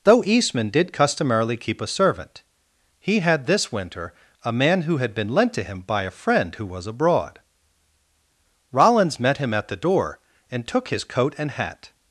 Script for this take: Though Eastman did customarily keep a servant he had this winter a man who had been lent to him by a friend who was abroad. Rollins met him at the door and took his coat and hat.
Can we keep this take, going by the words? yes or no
yes